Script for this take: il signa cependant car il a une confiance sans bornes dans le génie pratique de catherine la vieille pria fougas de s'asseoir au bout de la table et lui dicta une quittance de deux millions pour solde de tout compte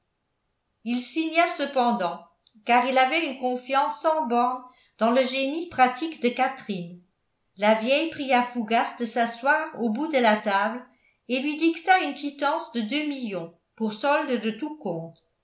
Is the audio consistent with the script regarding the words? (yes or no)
no